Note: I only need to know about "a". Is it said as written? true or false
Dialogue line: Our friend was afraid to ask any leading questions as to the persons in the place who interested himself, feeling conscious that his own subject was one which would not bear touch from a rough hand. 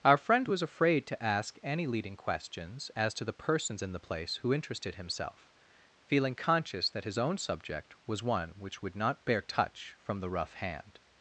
false